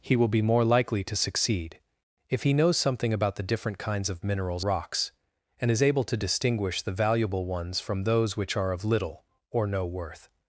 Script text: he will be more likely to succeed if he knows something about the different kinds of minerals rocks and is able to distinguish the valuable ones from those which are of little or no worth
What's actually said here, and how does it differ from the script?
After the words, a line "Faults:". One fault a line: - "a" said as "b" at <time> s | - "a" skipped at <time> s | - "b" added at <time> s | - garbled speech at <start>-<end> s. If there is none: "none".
he will be more likely to succeed if he knows something about the different kinds of minerals rocks and is able to distinguish the valuable ones from those which are of little or no worth
Faults:
none